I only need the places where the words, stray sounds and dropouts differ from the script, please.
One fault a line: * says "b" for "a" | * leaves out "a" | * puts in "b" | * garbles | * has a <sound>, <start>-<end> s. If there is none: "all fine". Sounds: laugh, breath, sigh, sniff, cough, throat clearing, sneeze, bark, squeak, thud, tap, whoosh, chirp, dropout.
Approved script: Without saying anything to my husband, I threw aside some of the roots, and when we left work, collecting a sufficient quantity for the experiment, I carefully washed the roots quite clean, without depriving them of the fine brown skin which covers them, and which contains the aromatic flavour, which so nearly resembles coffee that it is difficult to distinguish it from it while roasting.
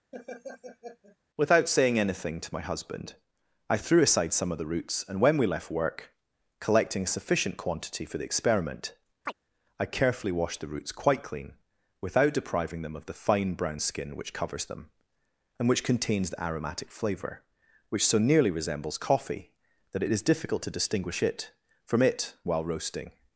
* has a laugh, 0.1-1.2 s
* has a chirp, 9.3-9.3 s